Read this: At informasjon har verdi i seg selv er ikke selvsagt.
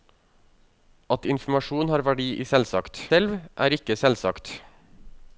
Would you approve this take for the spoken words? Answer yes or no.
no